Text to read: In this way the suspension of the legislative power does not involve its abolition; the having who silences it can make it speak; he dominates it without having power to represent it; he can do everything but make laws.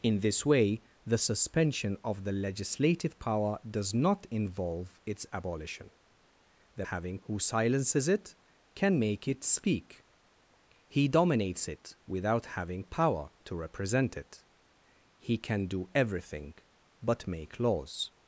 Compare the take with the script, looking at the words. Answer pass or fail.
pass